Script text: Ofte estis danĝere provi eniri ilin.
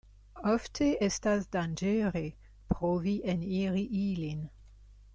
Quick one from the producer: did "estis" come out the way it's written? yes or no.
no